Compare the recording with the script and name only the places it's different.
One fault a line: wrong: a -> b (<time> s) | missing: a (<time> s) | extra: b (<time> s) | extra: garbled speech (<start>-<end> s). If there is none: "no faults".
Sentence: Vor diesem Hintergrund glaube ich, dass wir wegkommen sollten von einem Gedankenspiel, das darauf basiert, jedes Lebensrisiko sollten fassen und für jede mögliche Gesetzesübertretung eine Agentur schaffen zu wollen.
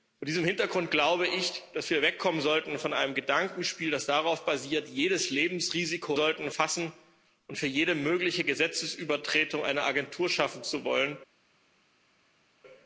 no faults